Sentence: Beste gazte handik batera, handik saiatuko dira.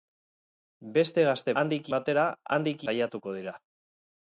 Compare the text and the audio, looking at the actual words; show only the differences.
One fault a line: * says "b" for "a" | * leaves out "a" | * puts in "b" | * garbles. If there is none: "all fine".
all fine